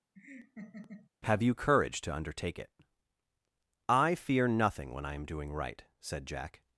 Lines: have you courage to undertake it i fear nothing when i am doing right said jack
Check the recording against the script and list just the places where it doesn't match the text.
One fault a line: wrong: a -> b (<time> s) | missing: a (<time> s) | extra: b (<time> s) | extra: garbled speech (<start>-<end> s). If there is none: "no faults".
no faults